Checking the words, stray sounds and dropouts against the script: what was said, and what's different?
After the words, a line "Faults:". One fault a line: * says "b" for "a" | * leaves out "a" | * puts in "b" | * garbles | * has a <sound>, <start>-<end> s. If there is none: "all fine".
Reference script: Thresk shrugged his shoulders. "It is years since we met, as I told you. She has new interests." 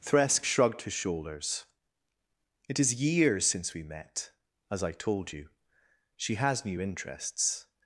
Thresk shrugged his shoulders. "It is years since we met, as I told you. She has new interests."
Faults:
all fine